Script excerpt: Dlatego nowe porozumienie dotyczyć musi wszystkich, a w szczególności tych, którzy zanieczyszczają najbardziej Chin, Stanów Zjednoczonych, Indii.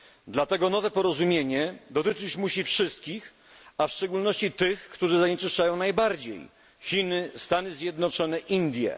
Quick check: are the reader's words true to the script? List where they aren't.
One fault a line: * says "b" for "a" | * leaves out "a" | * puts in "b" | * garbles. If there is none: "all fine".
all fine